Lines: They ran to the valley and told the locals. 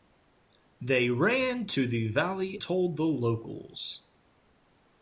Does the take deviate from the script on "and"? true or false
true